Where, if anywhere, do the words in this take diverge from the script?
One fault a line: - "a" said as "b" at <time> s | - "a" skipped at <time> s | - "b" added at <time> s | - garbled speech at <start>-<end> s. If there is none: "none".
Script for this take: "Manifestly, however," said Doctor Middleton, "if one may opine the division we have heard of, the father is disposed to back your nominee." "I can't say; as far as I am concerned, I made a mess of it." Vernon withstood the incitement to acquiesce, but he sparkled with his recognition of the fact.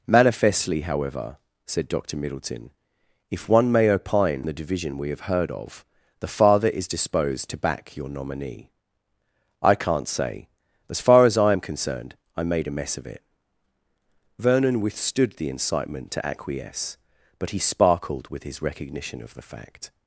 none